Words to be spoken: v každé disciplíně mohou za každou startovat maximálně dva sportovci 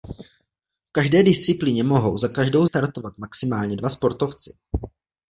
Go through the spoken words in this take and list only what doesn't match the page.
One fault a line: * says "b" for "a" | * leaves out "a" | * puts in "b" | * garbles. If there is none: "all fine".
all fine